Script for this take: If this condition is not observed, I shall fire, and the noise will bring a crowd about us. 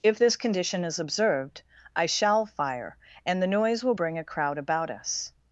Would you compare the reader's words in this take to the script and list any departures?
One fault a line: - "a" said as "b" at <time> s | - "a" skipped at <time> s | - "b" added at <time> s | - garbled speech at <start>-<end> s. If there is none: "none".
- "not" skipped at 1.0 s